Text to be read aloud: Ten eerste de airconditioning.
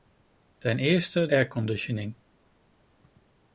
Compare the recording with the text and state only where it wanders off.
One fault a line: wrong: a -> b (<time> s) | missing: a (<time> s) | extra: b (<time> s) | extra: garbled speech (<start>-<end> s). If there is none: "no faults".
missing: de (1.3 s)